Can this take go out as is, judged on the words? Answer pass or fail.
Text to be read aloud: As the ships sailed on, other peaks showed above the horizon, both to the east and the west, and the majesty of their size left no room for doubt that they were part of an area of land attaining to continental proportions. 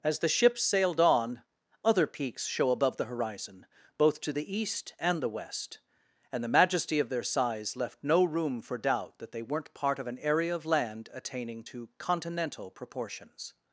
fail